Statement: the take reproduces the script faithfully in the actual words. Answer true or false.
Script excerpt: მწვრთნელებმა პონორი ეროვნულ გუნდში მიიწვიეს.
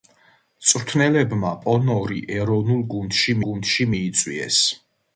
false